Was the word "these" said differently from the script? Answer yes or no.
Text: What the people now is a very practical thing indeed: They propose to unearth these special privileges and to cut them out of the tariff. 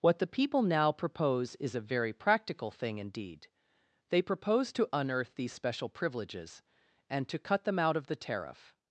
no